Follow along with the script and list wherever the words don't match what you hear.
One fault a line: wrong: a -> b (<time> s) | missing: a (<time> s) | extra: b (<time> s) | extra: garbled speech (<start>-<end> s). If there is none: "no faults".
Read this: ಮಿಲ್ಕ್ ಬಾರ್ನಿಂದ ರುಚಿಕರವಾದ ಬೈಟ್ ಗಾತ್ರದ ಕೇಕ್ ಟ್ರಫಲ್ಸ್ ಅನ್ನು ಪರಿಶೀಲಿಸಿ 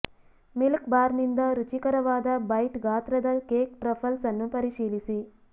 no faults